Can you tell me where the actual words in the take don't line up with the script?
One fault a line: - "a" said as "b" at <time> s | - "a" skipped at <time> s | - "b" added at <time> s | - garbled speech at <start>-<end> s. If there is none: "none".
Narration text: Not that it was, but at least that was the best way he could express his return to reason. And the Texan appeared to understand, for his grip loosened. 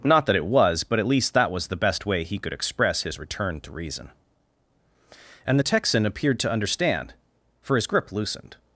none